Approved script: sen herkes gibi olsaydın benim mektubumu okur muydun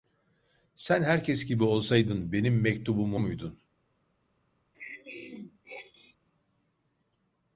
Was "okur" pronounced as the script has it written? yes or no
no